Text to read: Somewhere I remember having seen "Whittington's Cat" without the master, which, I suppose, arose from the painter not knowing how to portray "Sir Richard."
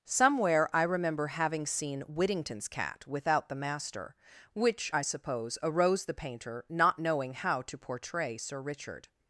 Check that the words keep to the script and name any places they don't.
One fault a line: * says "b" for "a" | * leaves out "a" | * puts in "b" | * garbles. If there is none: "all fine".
* leaves out "from"